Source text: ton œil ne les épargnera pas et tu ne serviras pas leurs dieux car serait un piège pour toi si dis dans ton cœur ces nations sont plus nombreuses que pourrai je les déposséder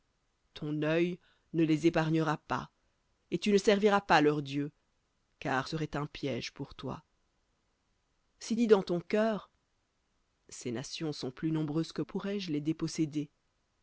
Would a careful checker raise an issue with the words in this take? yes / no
no